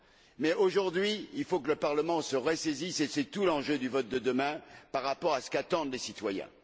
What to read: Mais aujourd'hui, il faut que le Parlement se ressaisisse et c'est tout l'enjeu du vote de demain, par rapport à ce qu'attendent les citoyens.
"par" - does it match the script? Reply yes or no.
yes